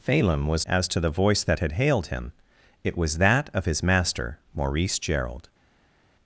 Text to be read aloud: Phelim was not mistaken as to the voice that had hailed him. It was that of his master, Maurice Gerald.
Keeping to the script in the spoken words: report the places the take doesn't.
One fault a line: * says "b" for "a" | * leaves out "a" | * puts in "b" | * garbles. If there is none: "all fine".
* leaves out "not mistaken"